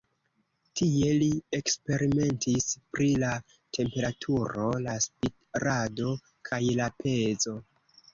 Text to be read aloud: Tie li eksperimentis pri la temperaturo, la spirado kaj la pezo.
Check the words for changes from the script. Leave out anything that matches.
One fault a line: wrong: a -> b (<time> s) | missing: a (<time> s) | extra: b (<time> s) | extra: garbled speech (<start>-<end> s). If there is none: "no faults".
no faults